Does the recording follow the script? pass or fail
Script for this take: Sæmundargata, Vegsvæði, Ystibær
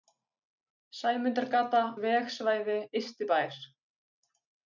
pass